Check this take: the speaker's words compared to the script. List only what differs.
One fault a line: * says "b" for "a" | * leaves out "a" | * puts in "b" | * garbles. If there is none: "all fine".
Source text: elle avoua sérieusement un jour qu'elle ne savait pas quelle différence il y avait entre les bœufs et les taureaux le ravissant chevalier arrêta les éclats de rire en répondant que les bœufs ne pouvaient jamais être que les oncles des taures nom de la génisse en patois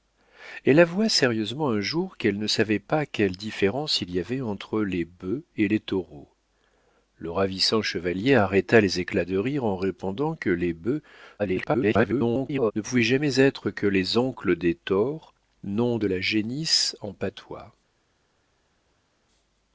* garbles